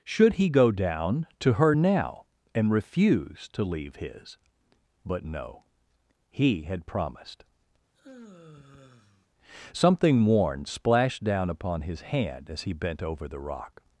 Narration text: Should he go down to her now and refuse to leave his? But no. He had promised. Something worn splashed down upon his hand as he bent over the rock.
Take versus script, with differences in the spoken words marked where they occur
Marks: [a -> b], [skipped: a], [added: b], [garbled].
Should he go down to her now and refuse to leave his? But no. He had promised. Something worn splashed down upon his hand as he bent over the rock.